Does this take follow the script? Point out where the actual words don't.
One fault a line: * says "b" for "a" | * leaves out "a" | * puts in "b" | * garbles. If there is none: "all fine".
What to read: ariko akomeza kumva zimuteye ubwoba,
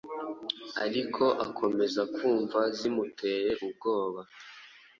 all fine